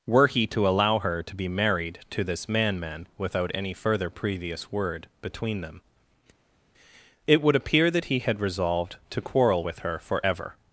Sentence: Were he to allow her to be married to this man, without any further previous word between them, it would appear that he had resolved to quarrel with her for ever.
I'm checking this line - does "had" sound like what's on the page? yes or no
yes